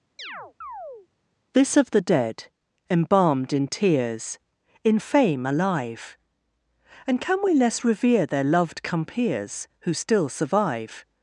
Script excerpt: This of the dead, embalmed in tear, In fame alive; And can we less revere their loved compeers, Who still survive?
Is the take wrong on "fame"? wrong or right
right